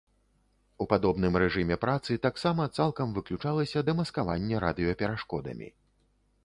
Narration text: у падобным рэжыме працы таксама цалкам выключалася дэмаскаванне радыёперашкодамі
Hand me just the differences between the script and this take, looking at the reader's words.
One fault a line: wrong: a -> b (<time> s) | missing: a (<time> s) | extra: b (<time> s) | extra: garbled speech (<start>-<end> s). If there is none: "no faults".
no faults